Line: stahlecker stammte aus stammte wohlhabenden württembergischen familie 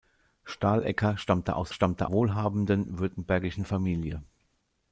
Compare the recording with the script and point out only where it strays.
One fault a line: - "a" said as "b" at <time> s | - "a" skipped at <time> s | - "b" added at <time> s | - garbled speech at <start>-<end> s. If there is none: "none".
none